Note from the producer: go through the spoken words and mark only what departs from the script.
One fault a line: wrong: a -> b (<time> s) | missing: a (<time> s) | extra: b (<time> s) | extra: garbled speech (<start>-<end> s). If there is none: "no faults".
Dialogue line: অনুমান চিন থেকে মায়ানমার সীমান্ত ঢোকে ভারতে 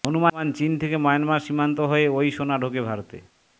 extra: হয়ে ওই সোনা (1.8 s)